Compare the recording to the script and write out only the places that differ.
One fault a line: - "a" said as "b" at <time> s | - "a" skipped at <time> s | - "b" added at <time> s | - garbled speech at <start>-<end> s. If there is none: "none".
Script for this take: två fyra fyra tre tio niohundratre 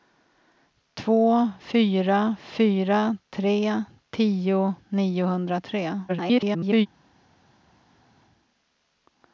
- garbled speech at 6.1-6.9 s